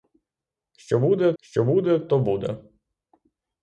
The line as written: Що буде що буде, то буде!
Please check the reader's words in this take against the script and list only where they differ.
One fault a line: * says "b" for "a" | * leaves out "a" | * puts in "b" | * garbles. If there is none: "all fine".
all fine